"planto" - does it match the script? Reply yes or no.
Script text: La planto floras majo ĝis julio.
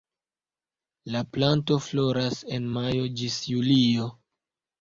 yes